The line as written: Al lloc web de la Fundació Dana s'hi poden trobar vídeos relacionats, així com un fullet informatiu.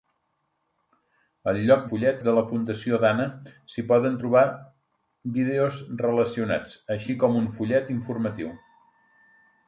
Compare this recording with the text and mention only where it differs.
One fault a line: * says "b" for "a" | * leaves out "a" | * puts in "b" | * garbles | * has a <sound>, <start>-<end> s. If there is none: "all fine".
* says "fullet" for "web"